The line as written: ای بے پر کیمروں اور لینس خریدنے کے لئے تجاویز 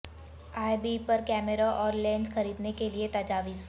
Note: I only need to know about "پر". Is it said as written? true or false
true